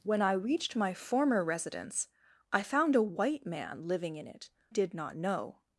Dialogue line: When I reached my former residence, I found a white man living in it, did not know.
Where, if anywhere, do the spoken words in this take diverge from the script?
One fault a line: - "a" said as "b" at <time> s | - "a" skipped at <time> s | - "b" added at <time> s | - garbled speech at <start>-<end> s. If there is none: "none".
none